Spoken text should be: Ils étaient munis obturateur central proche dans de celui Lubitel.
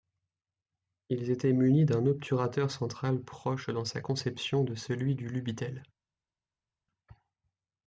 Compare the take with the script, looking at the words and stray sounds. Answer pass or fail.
fail